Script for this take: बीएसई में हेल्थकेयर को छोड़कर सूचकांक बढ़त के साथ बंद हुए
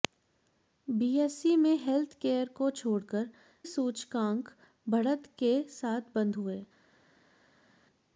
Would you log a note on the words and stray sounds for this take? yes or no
no